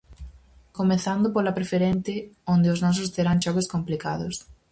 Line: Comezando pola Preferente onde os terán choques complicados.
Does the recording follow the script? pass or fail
fail